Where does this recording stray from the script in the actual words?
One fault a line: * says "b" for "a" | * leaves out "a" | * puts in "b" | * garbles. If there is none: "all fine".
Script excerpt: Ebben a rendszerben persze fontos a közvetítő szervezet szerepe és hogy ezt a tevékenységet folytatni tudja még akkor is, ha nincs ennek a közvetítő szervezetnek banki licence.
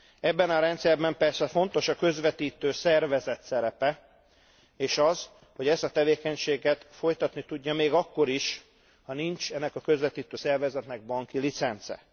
* puts in "az"